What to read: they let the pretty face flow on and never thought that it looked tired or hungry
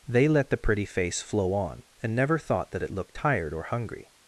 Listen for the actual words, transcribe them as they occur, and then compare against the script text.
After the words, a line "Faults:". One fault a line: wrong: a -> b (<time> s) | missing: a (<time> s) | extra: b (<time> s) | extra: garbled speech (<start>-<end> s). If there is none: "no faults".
they let the pretty face flow on and never thought that it looked tired or hungry
Faults:
no faults